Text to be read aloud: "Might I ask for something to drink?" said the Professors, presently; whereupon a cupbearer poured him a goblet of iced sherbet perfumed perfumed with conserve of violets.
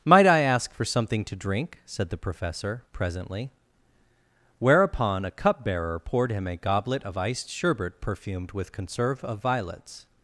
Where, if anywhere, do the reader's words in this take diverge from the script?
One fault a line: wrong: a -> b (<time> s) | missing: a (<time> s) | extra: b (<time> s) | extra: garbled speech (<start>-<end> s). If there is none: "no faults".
wrong: Professors -> Professor (2.2 s)
missing: perfumed (8.5 s)